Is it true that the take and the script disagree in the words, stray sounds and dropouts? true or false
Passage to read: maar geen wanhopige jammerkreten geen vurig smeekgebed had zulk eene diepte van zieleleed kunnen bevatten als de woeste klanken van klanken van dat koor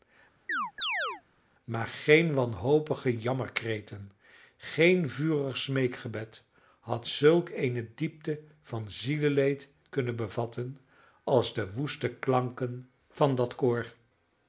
true